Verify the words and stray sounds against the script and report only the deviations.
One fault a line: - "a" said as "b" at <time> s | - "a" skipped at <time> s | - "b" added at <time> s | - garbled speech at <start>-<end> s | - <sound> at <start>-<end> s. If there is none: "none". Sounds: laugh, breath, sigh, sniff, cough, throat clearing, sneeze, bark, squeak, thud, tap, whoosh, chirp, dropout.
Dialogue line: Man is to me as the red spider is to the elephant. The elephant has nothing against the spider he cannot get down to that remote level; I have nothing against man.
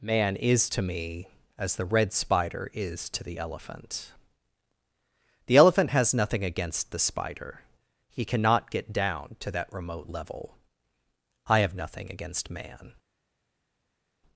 none